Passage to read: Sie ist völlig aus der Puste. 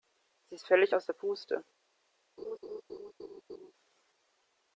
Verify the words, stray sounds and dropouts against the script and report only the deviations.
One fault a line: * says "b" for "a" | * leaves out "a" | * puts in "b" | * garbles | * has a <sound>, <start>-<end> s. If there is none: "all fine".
* has a laugh, 2.4-3.7 s